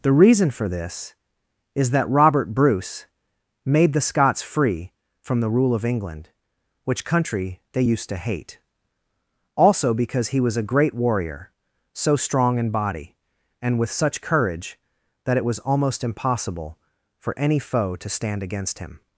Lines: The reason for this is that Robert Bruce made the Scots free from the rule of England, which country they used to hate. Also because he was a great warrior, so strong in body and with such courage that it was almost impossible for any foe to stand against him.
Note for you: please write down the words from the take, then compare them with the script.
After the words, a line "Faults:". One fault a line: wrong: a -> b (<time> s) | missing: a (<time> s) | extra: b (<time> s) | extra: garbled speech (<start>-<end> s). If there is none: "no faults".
The reason for this is that Robert Bruce made the Scots free from the rule of England, which country they used to hate. Also because he was a great warrior, so strong in body and with such courage that it was almost impossible for any foe to stand against him.
Faults:
no faults